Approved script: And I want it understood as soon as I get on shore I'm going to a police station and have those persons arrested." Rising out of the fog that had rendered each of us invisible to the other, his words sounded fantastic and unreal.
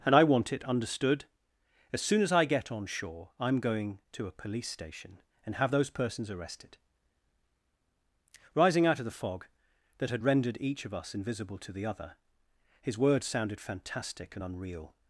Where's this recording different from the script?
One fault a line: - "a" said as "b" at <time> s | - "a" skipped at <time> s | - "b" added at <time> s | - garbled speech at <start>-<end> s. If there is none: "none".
none